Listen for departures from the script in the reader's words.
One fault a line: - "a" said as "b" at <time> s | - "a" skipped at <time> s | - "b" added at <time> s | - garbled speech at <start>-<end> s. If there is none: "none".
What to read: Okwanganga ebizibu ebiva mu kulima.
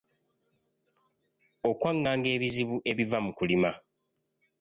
none